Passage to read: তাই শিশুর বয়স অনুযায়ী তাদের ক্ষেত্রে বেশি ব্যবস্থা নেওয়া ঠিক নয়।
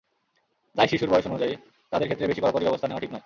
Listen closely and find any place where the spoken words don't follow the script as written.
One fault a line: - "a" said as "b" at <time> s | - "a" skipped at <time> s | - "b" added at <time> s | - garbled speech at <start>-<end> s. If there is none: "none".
- "কড়াকড়ি" added at 2.4 s